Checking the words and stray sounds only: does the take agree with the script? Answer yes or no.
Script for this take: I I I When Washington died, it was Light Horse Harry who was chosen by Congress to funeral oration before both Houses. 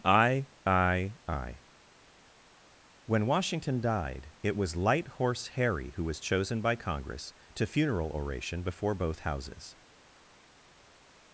yes